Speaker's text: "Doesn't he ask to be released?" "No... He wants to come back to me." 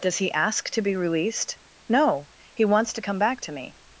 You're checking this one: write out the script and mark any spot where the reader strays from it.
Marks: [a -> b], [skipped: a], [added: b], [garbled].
["Doesn't -> Does] he ask to be released?" "No... He wants to come back to me."